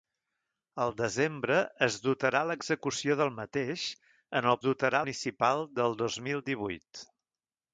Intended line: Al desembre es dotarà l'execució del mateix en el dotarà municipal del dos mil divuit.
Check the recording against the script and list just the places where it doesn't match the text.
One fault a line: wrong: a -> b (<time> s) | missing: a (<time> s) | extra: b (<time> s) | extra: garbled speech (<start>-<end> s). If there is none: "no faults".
no faults